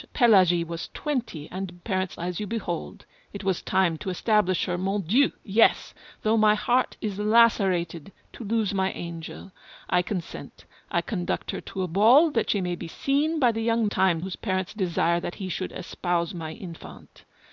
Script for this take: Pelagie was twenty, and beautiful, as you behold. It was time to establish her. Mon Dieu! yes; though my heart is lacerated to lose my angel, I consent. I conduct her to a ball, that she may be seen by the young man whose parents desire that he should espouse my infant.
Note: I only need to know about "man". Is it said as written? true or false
false